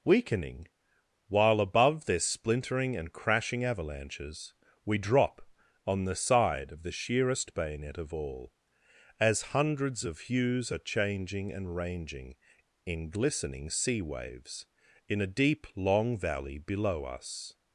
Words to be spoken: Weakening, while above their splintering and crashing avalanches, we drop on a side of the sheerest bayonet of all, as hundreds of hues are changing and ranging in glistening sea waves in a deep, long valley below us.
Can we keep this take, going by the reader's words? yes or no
no